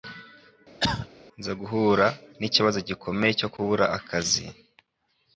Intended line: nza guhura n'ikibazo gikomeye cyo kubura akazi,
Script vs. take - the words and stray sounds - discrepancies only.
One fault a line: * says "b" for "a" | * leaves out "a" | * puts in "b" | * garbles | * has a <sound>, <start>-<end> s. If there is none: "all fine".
* has a cough, 0.8-1.1 s